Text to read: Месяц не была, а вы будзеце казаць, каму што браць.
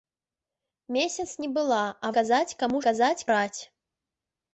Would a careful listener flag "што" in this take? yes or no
yes